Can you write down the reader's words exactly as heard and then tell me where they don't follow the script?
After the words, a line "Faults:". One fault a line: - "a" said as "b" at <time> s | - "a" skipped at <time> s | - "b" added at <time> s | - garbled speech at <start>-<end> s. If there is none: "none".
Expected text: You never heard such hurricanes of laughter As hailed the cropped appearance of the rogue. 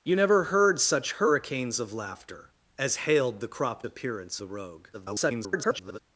You never heard such hurricanes of laughter As hailed the cropped appearance the rogue. [garbled]
Faults:
- "of" skipped at 4.4 s
- garbled speech at 4.9-6.0 s